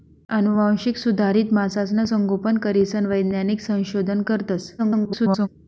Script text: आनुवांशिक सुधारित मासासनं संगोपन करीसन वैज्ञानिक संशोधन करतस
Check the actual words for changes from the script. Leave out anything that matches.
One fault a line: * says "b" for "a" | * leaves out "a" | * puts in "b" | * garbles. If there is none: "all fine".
* garbles